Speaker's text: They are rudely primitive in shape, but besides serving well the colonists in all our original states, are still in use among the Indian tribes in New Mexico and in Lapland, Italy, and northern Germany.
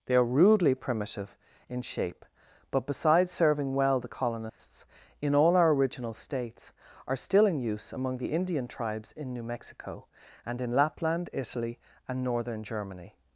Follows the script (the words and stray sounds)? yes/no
no